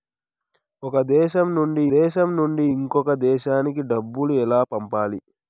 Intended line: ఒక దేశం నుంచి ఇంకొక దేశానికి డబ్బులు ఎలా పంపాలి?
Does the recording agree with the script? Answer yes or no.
no